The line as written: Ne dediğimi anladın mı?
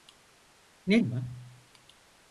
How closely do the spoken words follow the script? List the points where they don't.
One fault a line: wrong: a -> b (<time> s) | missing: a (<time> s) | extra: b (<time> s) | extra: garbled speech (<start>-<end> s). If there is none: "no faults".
missing: dediğimi anladın (1.0 s)